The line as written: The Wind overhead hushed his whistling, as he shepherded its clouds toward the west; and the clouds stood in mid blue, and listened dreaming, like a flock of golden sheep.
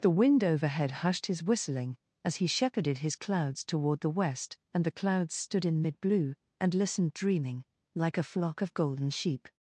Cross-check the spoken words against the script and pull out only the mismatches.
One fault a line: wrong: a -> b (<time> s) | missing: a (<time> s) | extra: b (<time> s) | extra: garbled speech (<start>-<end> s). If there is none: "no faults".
wrong: its -> his (3.0 s)